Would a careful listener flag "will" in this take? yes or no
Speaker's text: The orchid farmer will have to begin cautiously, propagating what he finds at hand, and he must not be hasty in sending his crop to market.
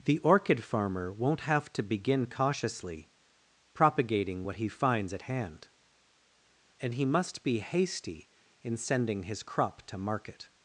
yes